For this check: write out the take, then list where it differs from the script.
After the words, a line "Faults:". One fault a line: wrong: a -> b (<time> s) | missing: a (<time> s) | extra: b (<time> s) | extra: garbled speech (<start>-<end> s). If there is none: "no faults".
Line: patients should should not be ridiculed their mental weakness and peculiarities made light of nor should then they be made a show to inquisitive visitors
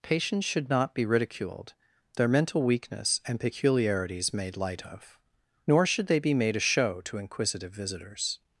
patients should not be ridiculed their mental weakness and peculiarities made light of nor should they be made a show to inquisitive visitors
Faults:
missing: should (0.7 s)
missing: then (6.1 s)